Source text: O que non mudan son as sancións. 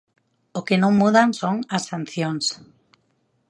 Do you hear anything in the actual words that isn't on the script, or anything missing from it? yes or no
no